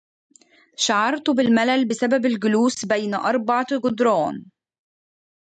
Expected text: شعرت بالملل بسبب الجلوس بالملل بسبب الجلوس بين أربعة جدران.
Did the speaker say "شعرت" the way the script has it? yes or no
yes